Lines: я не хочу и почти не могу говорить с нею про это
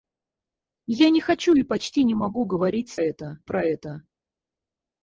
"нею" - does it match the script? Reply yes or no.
no